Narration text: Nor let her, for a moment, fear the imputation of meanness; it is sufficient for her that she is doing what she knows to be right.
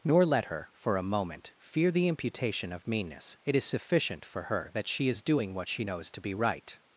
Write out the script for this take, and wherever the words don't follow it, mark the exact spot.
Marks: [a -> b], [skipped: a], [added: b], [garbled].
Nor let her, for a moment, fear the imputation of meanness; it is sufficient for her that she is doing what she knows to be right.